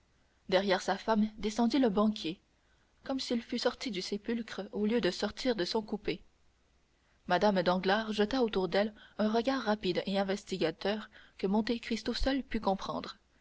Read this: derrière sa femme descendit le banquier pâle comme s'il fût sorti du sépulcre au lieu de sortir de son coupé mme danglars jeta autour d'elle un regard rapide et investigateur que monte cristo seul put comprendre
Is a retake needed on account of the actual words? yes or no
yes